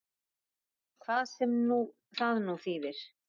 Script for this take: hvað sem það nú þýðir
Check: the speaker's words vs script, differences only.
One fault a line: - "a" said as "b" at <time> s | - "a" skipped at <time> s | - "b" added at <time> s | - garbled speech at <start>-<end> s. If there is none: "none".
none